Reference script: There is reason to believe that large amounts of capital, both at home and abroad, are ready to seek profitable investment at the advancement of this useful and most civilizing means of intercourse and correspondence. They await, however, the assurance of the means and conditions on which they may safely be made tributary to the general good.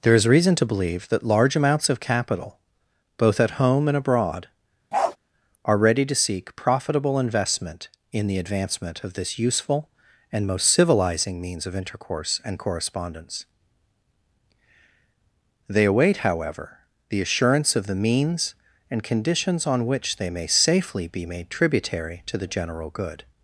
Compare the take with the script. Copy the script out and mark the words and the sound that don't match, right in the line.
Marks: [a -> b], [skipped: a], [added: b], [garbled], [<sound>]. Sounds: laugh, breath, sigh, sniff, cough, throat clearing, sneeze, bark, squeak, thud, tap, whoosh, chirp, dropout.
There is reason to believe that large amounts of capital, both at home and abroad, [bark] are ready to seek profitable investment [at -> in] the advancement of this useful and most civilizing means of intercourse and correspondence. They await, however, the assurance of the means and conditions on which they may safely be made tributary to the general good.